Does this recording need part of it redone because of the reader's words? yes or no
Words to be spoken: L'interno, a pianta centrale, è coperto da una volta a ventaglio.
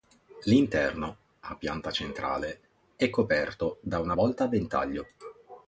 no